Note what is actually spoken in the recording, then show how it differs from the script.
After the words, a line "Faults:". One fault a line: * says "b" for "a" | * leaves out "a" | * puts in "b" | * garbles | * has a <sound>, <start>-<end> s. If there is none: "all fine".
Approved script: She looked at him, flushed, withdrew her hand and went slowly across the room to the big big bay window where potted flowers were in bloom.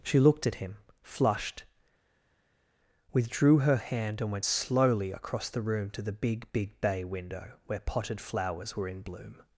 She looked at him, flushed, withdrew her hand and went slowly across the room to the big big bay window where potted flowers were in bloom.
Faults:
all fine